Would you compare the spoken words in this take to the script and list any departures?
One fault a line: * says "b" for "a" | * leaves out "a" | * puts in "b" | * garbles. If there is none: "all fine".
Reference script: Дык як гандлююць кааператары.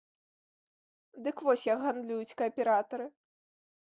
* puts in "вось"